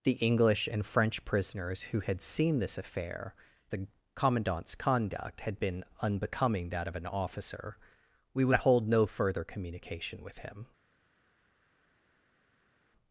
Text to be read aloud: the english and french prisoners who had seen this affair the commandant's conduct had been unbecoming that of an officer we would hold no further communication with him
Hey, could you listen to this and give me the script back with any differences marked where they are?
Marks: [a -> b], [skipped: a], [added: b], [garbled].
the english and french prisoners who had seen this affair the commandant's conduct had been unbecoming that of an officer we would hold no further communication with him